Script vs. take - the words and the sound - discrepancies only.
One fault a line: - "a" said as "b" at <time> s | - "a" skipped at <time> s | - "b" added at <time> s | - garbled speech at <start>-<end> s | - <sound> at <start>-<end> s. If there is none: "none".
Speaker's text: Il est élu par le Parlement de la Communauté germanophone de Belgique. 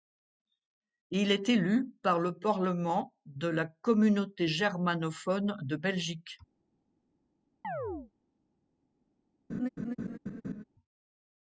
- chirp at 7.6-8.1 s
- laugh at 9.5-10.6 s